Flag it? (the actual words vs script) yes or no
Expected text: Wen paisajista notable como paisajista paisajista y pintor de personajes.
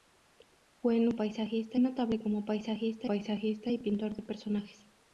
no